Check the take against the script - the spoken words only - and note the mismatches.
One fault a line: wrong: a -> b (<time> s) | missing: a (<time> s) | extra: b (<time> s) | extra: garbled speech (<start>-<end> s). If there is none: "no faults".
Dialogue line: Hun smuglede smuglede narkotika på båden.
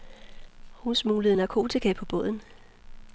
missing: smuglede (1.4 s)